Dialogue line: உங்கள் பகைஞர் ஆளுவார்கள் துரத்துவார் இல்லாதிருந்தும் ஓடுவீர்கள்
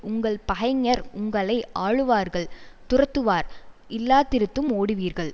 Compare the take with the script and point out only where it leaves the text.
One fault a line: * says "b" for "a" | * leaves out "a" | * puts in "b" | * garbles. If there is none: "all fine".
* puts in "உங்களை"